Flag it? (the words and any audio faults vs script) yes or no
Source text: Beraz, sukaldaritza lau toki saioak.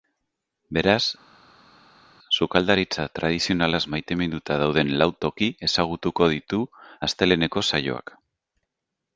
yes